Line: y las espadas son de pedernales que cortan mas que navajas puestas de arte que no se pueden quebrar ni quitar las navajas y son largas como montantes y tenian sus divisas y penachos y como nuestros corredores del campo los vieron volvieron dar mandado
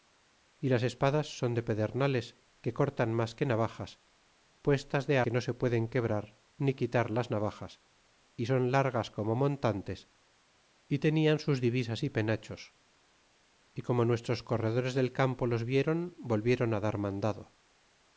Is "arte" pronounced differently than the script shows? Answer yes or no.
yes